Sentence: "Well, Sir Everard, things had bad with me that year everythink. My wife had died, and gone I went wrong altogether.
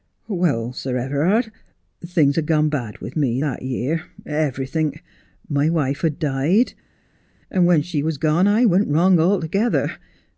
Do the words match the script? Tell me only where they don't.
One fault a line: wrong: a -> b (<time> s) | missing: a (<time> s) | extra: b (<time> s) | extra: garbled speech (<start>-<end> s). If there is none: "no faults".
extra: gone (2.5 s)
extra: when she was (7.6 s)